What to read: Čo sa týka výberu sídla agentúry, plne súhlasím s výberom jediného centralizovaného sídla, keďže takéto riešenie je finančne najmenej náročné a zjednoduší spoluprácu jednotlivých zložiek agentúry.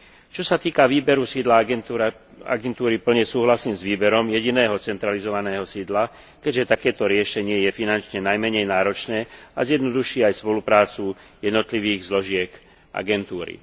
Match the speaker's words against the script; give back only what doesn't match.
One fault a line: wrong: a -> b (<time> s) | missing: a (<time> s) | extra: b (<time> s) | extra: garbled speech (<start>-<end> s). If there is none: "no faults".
extra: aj (10.2 s)